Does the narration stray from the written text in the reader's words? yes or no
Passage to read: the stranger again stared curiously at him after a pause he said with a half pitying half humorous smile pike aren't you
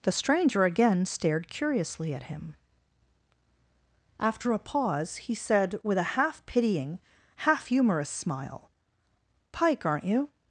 no